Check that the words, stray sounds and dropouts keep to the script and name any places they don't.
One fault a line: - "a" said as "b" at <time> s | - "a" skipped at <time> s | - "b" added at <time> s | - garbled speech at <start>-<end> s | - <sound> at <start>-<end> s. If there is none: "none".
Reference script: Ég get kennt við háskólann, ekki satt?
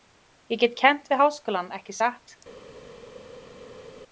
none